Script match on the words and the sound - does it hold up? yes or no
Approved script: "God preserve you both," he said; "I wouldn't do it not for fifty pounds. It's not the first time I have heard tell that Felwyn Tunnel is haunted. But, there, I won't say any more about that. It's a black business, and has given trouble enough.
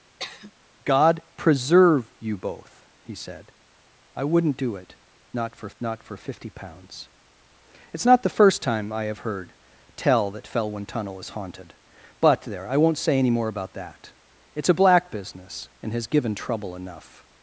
no